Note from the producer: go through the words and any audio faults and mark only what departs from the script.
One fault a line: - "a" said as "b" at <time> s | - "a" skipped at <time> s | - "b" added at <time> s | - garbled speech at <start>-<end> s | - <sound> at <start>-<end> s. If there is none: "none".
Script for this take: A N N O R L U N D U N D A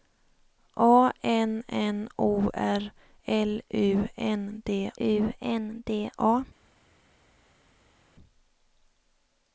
none